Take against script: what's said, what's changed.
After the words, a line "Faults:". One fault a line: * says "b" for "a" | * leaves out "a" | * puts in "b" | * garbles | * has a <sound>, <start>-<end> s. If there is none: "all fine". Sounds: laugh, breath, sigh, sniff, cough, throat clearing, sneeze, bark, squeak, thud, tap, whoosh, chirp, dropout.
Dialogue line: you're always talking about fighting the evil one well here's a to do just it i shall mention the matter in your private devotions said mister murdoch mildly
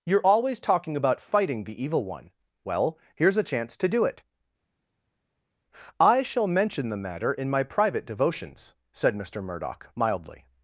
you're always talking about fighting the evil one well here's a chance to do it i shall mention the matter in my private devotions said mister murdoch mildly
Faults:
* puts in "chance"
* leaves out "just"
* says "my" for "your"